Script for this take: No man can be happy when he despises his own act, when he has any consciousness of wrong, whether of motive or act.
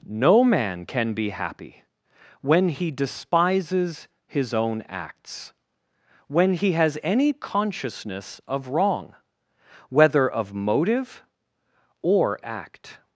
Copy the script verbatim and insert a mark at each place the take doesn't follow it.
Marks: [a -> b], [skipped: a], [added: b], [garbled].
No man can be happy when he despises his own [act, -> acts] when he has any consciousness of wrong, whether of motive or act.